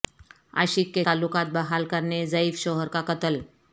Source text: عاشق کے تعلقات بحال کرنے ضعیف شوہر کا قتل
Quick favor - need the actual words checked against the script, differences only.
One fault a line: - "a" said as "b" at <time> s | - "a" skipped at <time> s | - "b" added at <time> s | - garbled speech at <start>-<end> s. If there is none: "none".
none